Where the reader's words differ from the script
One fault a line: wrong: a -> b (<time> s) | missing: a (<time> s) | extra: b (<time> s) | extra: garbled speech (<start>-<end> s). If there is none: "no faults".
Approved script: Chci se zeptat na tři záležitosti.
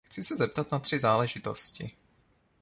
no faults